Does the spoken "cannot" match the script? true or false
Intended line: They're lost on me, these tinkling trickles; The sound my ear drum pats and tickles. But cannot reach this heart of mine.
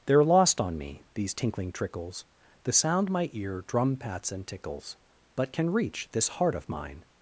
false